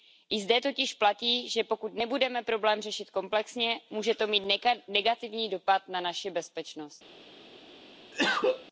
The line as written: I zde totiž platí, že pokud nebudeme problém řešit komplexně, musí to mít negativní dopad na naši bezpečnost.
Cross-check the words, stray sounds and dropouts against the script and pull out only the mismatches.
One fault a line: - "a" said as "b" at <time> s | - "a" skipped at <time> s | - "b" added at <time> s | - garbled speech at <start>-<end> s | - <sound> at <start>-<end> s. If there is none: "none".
- "musí" said as "může" at 3.9 s
- cough at 8.1-8.7 s